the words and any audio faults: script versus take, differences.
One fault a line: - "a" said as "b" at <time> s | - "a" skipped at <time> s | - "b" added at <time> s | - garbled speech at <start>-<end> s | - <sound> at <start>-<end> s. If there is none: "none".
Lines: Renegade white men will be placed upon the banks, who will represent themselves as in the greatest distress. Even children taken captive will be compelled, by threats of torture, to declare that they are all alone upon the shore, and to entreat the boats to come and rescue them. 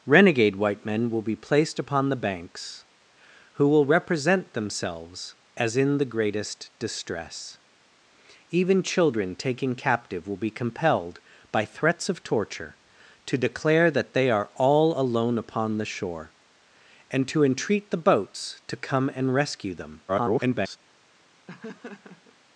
- garbled speech at 20.1-20.8 s
- laugh at 21.5-22.4 s